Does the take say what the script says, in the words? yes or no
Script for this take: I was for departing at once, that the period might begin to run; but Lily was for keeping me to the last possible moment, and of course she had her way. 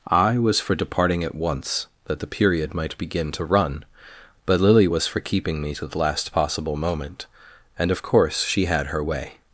yes